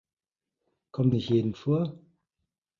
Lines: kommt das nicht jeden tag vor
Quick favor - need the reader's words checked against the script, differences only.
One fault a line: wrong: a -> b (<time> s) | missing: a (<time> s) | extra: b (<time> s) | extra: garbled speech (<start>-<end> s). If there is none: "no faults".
missing: das (1.1 s)
missing: tag (1.5 s)